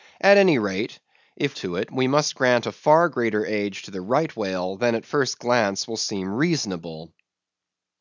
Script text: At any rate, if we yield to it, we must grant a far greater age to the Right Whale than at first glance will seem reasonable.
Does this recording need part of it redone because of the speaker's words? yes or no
yes